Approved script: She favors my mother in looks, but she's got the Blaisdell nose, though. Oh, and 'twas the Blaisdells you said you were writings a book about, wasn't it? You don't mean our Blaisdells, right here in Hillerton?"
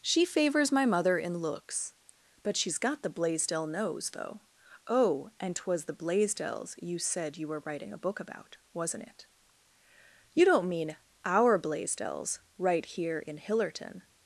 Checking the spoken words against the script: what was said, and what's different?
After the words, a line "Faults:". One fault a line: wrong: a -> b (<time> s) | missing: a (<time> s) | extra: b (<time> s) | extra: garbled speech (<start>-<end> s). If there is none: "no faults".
She favors my mother in looks, but she's got the Blaisdell nose, though. Oh, and 'twas the Blaisdells you said you were writing a book about, wasn't it? You don't mean our Blaisdells, right here in Hillerton?"
Faults:
wrong: writings -> writing (7.7 s)